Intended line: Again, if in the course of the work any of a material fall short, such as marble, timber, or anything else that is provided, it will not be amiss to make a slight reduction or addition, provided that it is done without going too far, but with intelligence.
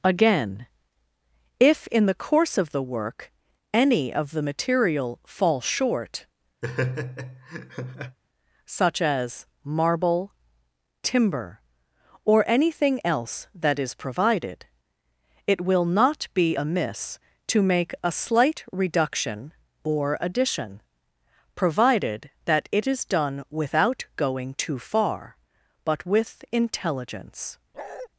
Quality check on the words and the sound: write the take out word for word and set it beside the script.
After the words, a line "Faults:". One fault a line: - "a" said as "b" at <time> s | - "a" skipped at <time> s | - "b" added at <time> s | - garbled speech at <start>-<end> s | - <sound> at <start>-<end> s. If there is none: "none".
Again, if in the course of the work any of the material fall short, such as marble, timber, or anything else that is provided, it will not be amiss to make a slight reduction or addition, provided that it is done without going too far, but with intelligence.
Faults:
- "a" said as "the" at 4.3 s
- laugh at 6.6-8.2 s
- bark at 27.7-28.1 s